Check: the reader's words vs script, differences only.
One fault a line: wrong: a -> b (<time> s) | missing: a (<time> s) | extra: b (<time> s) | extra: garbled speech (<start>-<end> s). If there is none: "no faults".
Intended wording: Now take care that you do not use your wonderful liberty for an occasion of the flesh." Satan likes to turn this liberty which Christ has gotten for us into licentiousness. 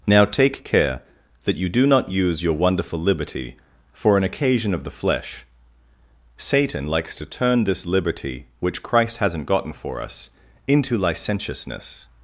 wrong: has -> hasn't (9.2 s)